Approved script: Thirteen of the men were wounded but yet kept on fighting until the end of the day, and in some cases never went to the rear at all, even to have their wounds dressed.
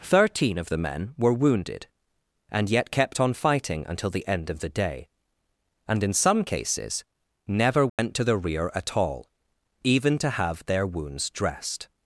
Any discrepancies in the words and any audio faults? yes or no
yes